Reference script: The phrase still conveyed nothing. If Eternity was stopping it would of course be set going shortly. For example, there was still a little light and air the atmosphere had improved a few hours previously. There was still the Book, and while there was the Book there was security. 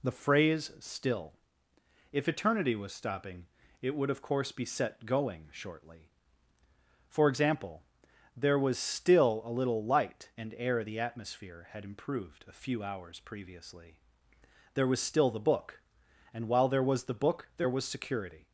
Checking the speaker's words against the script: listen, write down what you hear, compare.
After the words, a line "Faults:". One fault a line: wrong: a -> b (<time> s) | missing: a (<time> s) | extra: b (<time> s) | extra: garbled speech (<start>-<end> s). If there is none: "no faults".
The phrase still. If Eternity was stopping it would of course be set going shortly. For example, there was still a little light and air the atmosphere had improved a few hours previously. There was still the Book, and while there was the Book there was security.
Faults:
missing: conveyed nothing (1.3 s)